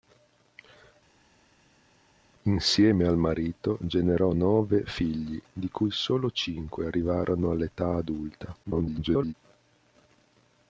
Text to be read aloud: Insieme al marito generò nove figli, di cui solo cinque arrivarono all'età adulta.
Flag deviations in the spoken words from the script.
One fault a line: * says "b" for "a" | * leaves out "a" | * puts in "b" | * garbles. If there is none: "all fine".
* garbles